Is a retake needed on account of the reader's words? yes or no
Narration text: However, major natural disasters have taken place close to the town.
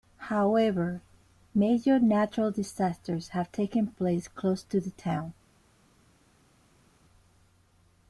no